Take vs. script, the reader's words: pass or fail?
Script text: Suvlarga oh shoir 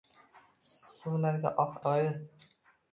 pass